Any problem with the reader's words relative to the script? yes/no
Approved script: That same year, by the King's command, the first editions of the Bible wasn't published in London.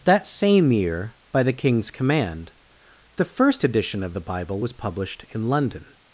yes